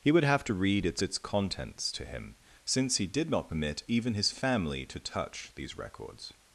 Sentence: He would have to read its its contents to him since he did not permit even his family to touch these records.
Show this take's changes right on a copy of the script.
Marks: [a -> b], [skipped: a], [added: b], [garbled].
He would have to read its its contents to him since he did not permit even his family to touch these records.